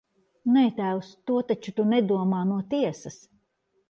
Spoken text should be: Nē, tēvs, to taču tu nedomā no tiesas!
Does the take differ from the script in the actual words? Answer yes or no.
no